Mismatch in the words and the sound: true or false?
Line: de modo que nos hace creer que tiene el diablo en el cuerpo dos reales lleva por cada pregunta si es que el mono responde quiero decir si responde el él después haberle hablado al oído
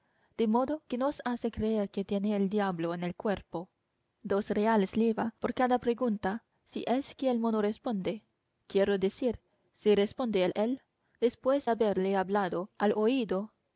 false